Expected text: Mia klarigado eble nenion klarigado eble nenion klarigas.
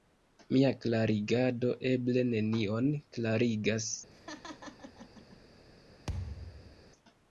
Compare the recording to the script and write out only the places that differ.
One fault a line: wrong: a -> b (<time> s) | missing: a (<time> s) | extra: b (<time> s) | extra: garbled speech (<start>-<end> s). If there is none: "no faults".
missing: klarigado eble nenion (2.9 s)